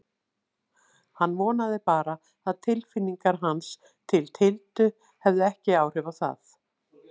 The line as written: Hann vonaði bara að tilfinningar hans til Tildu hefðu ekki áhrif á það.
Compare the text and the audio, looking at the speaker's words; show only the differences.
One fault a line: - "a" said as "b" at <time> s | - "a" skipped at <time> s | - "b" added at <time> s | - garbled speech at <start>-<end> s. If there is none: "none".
none